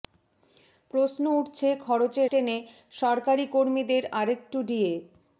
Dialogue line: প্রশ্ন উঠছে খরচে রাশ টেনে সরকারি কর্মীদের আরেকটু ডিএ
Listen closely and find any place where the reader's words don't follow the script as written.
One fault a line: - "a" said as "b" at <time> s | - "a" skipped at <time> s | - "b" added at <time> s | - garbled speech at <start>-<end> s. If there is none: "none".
- "রাশ" skipped at 2.2 s